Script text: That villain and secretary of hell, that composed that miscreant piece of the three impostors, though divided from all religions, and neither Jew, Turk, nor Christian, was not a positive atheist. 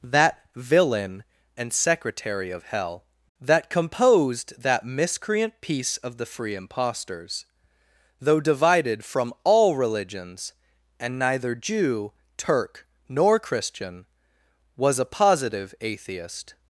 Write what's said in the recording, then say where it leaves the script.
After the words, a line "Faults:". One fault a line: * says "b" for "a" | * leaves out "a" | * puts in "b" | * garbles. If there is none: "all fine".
That villain and secretary of hell, that composed that miscreant piece of the free impostors, though divided from all religions, and neither Jew, Turk, nor Christian, was a positive atheist.
Faults:
* says "free" for "three"
* leaves out "not"